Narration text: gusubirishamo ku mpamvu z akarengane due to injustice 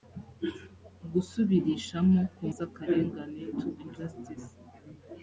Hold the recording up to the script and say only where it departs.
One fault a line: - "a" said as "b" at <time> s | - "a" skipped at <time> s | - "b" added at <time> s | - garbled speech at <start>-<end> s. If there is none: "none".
- "mpamvu" skipped at 2.4 s
- "due" skipped at 3.4 s